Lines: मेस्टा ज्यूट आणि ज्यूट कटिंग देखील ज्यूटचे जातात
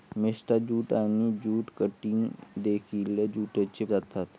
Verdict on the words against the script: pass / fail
pass